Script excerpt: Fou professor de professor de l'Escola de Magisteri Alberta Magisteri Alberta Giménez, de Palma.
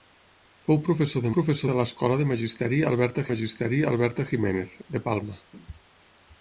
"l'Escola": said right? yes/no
yes